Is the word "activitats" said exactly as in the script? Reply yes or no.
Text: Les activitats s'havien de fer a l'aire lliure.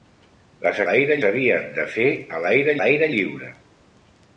no